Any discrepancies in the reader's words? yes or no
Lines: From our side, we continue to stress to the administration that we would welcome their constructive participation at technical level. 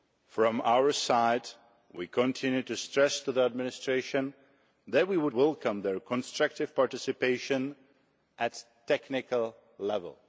no